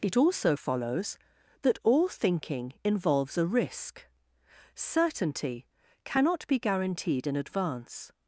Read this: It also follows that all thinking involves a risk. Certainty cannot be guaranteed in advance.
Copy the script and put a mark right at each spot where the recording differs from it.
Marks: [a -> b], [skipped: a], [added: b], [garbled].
It also follows that all thinking involves a risk. Certainty cannot be guaranteed in advance.